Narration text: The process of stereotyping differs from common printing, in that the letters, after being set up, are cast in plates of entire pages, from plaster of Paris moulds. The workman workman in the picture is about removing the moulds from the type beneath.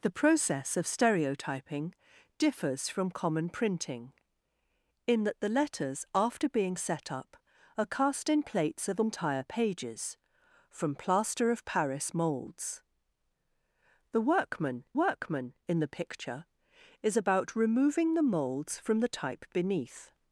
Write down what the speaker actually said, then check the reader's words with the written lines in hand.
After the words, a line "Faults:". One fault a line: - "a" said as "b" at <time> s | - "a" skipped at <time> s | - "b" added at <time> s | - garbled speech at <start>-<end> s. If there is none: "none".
The process of stereotyping differs from common printing, in that the letters, after being set up, are cast in plates of entire pages, from plaster of Paris moulds. The workman workman in the picture is about removing the moulds from the type beneath.
Faults:
none